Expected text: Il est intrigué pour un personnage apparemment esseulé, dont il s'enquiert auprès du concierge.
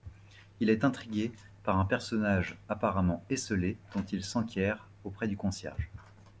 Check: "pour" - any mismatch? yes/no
yes